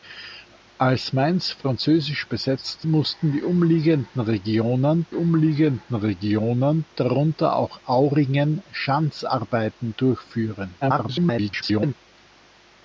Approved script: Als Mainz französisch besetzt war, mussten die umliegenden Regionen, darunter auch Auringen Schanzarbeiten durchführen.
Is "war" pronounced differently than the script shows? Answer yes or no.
yes